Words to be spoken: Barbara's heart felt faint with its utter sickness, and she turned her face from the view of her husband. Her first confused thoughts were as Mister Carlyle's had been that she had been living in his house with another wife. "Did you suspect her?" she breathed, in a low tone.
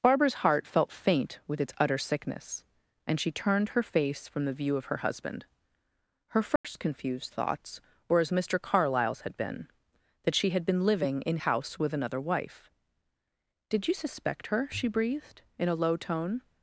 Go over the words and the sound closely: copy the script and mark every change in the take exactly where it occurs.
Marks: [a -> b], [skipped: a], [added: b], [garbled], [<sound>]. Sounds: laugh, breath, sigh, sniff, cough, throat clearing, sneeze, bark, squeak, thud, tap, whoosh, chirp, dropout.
Barbara's heart felt faint with its utter sickness, and she turned her face from the view of her husband. Her first [dropout] confused thoughts were as Mister Carlyle's had been that she had been living in [skipped: his] house with another wife. "Did you suspect her?" she breathed, in a low tone.